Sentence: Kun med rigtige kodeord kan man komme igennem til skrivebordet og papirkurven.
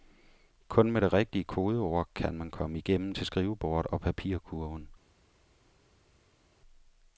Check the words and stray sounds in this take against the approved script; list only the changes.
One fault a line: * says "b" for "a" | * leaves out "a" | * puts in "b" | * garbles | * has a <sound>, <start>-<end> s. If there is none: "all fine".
* puts in "det"